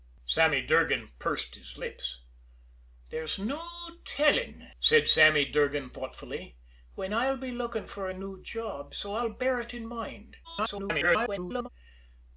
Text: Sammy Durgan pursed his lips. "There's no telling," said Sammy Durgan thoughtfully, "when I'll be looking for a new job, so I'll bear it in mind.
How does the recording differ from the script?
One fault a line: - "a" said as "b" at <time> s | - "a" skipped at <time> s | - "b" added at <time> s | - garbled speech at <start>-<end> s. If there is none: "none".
- garbled speech at 10.4-11.7 s